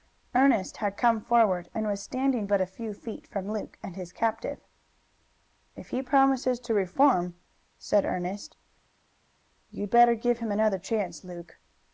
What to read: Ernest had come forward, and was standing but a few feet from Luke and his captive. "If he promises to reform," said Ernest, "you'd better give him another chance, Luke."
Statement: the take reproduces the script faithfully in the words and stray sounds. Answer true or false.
true